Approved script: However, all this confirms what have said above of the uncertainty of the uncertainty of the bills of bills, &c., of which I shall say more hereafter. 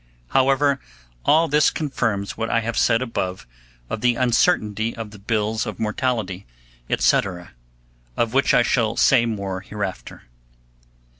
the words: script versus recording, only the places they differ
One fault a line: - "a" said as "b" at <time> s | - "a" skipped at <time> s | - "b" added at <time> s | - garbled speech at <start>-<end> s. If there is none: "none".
- "I" added at 2.5 s
- "uncertainty of the" skipped at 5.2 s
- "bills" said as "mortality" at 5.8 s